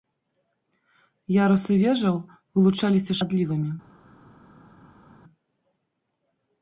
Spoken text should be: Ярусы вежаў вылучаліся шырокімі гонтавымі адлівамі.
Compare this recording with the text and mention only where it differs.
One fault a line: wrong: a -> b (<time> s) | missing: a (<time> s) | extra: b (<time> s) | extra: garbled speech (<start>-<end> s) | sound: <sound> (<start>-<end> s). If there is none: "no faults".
missing: шырокімі гонтавымі (3.1 s)